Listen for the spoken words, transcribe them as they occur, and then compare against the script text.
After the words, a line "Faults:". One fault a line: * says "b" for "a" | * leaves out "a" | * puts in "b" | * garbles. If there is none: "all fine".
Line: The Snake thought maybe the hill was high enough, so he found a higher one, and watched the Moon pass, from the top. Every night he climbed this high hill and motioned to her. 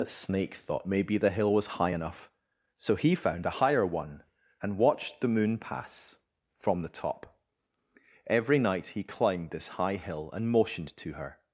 The Snake thought maybe the hill was high enough, so he found a higher one, and watched the Moon pass, from the top. Every night he climbed this high hill and motioned to her.
Faults:
all fine